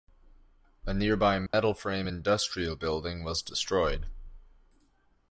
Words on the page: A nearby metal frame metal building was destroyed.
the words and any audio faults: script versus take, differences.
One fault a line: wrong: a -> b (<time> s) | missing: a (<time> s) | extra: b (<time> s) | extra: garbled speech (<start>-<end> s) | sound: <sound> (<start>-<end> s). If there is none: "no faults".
sound: dropout (1.5-1.5 s)
wrong: metal -> industrial (2.0 s)